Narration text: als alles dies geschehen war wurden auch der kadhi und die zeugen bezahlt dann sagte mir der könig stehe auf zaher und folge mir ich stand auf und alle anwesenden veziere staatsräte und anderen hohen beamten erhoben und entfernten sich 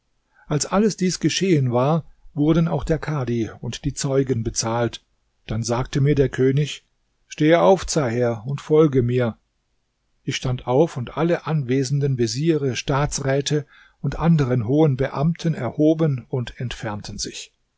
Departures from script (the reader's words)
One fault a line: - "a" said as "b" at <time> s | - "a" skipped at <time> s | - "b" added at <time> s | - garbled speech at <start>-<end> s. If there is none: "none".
none